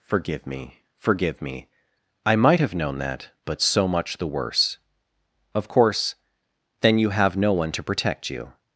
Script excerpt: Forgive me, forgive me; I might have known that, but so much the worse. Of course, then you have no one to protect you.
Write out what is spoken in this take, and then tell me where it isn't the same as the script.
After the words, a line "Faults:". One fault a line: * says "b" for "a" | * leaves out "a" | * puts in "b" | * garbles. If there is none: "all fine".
Forgive me, forgive me; I might have known that, but so much the worse. Of course, then you have no one to protect you.
Faults:
all fine